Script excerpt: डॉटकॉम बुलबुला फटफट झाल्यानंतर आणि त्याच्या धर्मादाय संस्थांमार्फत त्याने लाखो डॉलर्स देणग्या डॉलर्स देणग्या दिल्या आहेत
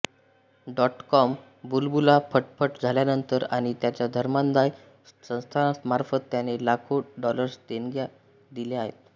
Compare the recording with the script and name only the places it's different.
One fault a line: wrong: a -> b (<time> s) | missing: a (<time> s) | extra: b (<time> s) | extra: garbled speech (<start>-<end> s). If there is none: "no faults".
missing: डॉलर्स देणग्या (8.1 s)